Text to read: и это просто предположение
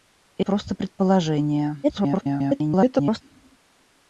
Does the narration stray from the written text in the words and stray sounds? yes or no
yes